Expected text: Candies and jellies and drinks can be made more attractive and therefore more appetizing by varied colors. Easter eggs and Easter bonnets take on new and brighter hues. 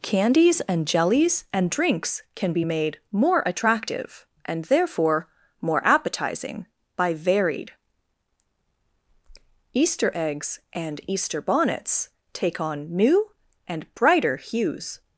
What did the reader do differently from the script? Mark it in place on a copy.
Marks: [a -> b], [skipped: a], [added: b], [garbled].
Candies and jellies and drinks can be made more attractive and therefore more appetizing by varied [skipped: colors.] Easter eggs and Easter bonnets take on new and brighter hues.